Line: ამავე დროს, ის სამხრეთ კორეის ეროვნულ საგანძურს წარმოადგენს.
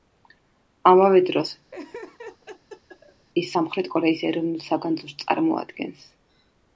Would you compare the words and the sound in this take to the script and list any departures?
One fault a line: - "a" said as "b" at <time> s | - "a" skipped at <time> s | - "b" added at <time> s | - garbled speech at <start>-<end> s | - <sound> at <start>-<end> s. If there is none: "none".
- laugh at 1.7-3.3 s